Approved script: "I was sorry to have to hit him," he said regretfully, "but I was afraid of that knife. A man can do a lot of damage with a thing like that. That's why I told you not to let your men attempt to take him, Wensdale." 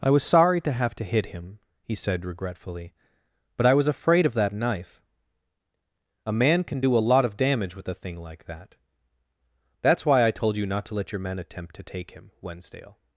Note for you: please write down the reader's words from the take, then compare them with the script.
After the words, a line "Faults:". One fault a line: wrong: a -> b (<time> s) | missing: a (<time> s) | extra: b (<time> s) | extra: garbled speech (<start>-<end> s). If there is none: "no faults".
"I was sorry to have to hit him," he said regretfully, "but I was afraid of that knife. A man can do a lot of damage with a thing like that. That's why I told you not to let your men attempt to take him, Wensdale."
Faults:
no faults